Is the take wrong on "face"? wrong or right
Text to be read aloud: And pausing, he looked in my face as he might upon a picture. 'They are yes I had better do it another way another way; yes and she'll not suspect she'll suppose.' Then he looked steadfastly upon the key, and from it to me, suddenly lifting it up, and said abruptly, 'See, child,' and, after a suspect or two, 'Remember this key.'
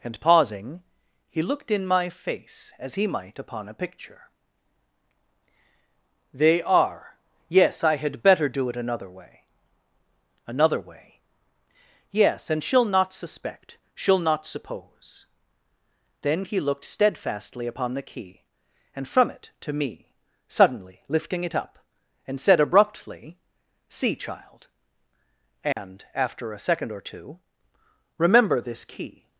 right